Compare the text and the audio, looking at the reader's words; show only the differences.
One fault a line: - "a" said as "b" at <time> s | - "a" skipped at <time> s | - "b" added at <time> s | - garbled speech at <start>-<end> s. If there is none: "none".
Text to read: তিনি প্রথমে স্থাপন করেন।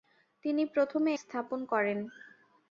none